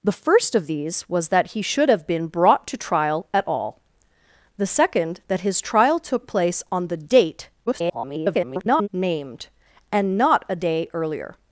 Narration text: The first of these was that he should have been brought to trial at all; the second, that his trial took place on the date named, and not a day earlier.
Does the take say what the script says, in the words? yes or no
no